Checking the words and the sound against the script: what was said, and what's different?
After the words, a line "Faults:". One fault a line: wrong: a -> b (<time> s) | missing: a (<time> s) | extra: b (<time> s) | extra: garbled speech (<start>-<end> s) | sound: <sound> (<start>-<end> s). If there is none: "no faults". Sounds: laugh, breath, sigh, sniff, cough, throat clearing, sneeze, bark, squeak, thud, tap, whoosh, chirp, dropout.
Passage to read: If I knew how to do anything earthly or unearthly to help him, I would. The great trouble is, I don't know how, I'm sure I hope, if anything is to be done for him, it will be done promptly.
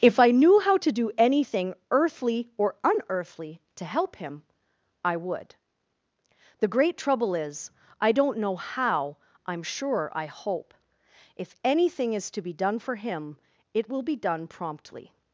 If I knew how to do anything earthly or unearthly to help him, I would. The great trouble is, I don't know how, I'm sure I hope, if anything is to be done for him, it will be done promptly.
Faults:
no faults